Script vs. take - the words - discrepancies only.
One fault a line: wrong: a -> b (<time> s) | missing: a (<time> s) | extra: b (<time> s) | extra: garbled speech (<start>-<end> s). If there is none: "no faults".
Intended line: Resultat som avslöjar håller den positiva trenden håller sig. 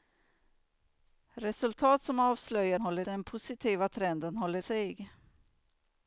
no faults